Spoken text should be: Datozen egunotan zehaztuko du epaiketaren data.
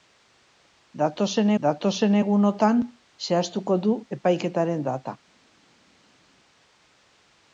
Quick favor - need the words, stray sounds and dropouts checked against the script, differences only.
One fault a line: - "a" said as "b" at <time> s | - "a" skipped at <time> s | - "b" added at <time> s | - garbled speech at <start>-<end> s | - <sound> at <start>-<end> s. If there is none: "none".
- "datozen" added at 1.6 s